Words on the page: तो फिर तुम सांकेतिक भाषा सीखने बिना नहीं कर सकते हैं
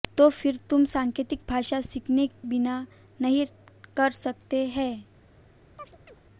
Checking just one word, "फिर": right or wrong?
right